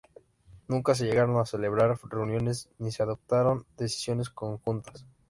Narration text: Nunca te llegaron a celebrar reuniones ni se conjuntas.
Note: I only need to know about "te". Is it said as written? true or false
false